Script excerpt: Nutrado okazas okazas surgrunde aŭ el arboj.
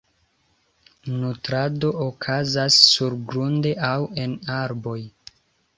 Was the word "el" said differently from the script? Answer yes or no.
yes